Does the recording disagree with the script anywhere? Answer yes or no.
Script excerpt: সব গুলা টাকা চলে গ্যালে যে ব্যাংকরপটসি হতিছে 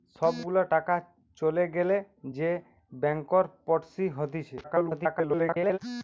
yes